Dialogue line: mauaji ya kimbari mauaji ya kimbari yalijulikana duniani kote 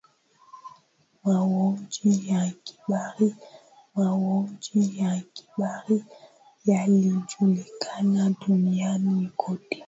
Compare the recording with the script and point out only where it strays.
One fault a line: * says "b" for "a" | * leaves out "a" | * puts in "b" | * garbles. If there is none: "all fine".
all fine